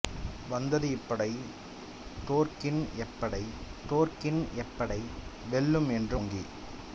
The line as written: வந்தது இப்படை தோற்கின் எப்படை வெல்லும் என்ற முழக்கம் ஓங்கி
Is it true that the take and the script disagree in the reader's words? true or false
true